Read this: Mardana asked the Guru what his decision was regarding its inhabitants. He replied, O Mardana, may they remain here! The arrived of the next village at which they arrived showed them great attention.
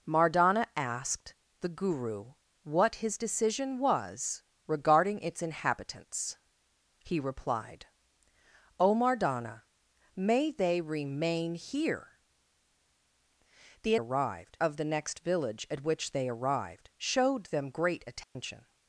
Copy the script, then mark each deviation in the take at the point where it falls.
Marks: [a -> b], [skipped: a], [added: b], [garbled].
Mardana asked the Guru what his decision was regarding its inhabitants. He replied, O Mardana, may they remain here! The arrived of the next village at which they arrived showed them great attention.